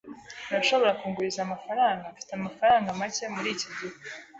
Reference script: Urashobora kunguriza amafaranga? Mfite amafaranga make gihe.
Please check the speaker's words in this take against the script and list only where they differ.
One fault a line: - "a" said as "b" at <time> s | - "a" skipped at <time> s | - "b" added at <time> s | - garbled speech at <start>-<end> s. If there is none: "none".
- "muri iki" added at 3.3 s